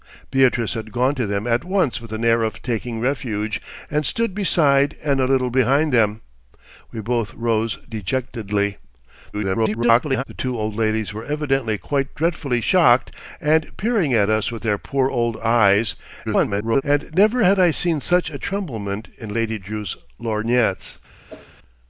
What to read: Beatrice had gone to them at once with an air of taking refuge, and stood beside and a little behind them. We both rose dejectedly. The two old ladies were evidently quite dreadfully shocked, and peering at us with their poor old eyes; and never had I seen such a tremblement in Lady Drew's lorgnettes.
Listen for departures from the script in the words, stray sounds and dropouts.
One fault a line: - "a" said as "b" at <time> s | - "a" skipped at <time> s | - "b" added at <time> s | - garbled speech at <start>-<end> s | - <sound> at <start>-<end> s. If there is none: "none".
- garbled speech at 9.3-10.2 s
- garbled speech at 16.2-16.8 s
- whoosh at 21.3-21.6 s